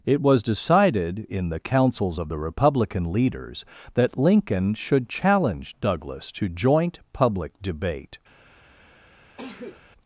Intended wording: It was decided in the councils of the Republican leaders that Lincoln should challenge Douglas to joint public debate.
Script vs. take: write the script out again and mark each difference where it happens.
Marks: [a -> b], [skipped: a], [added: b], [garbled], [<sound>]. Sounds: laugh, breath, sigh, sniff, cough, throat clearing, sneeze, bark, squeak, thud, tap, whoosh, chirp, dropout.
It was decided in the councils of the Republican leaders that Lincoln should challenge Douglas to joint public debate. [sneeze]